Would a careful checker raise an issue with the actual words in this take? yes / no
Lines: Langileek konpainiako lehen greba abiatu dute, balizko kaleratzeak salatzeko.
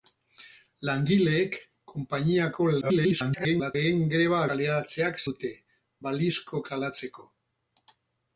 yes